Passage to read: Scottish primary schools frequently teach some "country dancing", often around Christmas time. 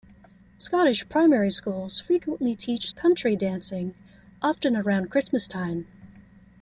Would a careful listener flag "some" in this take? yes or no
yes